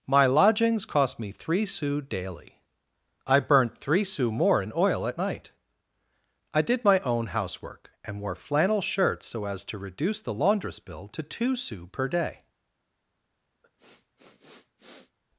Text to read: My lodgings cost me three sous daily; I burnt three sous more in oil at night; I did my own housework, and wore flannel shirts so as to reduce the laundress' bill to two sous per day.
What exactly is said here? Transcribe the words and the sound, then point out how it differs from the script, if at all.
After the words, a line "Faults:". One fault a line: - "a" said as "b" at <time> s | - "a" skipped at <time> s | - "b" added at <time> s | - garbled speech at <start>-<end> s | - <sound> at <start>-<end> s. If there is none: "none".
My lodgings cost me three sous daily; I burnt three sous more in oil at night; I did my own housework, and wore flannel shirts so as to reduce the laundress' bill to two sous per day.
Faults:
- sniff at 13.6-15.2 s